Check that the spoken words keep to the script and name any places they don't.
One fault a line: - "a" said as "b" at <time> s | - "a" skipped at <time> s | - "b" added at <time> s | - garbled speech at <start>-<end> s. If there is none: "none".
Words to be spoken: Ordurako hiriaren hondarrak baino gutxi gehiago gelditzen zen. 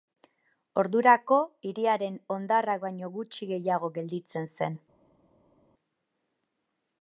none